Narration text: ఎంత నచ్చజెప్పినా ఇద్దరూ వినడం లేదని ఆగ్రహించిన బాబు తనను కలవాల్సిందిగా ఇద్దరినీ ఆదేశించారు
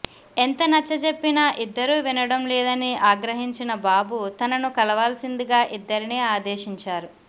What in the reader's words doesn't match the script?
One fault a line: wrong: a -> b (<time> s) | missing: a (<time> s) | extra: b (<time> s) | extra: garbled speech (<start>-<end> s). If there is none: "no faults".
no faults